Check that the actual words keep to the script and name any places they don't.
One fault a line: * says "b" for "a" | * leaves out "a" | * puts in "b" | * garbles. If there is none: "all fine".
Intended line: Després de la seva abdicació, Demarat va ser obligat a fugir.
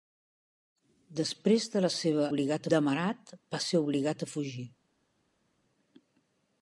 * says "obligat" for "abdicació"